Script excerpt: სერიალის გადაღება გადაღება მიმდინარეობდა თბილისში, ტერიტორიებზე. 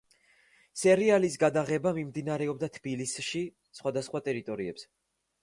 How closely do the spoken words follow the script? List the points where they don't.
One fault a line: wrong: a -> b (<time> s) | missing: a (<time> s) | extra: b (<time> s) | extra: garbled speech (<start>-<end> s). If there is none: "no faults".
missing: გადაღება (1.9 s)
extra: სხვადასხვა (3.8 s)